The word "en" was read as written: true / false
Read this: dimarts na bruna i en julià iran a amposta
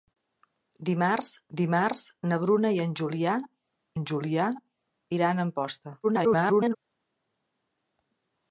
true